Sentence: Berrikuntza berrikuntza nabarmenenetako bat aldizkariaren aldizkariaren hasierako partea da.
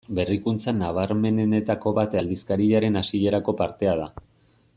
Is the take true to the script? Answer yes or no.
no